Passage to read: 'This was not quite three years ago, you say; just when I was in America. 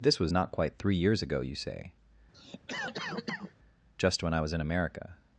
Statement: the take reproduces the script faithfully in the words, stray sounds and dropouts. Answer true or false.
false